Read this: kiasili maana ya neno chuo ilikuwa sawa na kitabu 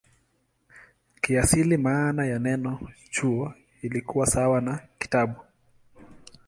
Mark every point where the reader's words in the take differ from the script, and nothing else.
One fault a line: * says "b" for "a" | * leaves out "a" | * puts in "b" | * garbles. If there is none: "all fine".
all fine